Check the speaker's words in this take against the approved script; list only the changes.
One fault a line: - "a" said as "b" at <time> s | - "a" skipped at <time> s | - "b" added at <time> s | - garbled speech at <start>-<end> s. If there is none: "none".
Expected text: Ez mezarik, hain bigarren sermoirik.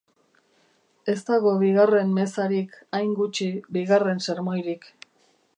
- "dago bigarren" added at 1.3 s
- "gutxi" added at 3.2 s